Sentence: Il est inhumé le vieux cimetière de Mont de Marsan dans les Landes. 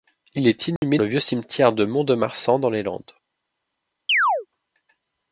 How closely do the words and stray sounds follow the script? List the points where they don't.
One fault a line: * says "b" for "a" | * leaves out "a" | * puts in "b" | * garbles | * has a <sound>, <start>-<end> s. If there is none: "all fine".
* has a dropout, 0.8-0.8 s
* has a chirp, 4.1-4.5 s